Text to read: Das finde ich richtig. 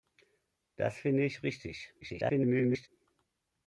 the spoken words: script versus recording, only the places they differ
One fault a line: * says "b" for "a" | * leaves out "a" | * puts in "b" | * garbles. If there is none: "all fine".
* garbles